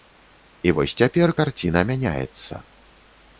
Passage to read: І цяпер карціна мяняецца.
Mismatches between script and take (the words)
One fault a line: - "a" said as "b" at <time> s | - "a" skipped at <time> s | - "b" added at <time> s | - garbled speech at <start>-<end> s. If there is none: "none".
- "вось" added at 0.8 s